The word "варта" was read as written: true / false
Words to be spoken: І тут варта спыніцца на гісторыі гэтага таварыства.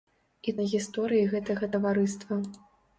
false